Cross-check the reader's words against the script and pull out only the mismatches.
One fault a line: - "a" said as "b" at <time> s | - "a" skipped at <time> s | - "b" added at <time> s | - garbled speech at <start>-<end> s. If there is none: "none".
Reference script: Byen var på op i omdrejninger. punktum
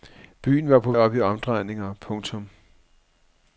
none